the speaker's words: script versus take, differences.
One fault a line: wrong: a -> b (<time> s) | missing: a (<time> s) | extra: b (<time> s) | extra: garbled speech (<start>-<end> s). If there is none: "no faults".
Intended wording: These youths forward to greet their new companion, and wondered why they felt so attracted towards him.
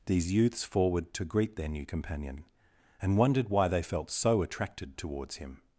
no faults